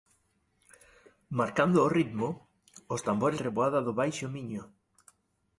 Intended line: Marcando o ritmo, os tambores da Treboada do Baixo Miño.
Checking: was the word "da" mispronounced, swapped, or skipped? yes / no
yes